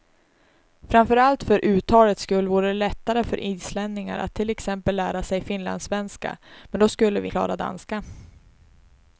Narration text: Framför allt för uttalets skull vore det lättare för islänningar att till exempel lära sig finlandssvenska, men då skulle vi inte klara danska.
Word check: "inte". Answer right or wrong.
wrong